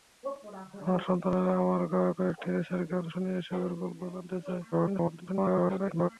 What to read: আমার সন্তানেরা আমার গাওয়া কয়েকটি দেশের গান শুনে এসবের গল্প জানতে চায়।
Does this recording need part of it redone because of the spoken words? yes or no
yes